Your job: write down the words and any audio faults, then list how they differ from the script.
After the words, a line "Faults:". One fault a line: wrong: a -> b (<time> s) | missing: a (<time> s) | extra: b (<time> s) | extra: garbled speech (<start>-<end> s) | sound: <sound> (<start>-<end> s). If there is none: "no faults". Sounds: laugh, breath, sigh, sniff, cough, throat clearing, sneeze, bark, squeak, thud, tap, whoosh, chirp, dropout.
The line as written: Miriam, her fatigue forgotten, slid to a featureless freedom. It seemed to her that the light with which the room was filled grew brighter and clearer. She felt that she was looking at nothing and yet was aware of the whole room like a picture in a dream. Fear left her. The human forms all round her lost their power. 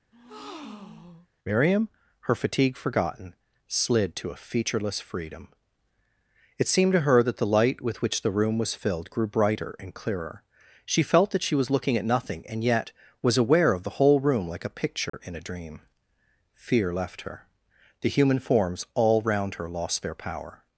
Miriam, her fatigue forgotten, slid to a featureless freedom. It seemed to her that the light with which the room was filled grew brighter and clearer. She felt that she was looking at nothing and yet was aware of the whole room like a picture in a dream. Fear left her. The human forms all round her lost their power.
Faults:
sound: breath (0.1-1.3 s)
sound: dropout (15.1-15.1 s)